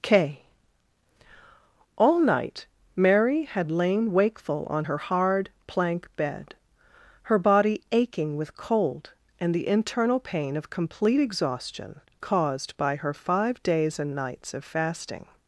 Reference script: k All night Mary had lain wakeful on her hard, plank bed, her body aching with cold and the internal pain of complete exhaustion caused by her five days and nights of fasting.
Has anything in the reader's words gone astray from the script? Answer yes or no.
no